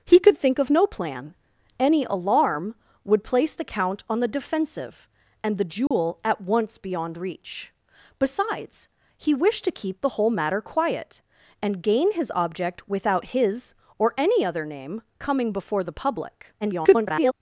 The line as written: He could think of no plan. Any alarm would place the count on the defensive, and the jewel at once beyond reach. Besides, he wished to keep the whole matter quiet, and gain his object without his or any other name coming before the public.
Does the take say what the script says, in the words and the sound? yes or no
no